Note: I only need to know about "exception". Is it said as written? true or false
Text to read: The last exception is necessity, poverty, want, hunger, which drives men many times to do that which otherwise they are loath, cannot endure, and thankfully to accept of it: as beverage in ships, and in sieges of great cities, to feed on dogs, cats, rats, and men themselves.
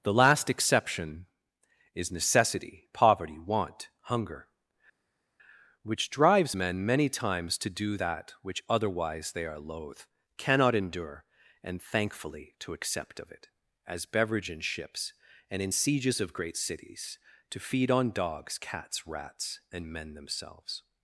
true